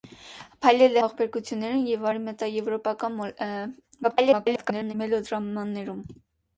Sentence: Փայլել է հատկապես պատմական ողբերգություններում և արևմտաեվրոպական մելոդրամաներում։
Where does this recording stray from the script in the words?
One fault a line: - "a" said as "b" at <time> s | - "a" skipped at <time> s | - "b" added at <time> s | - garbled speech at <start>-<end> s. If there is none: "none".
- "հատկապես պատմական" skipped at 1.0 s
- garbled speech at 4.0-4.9 s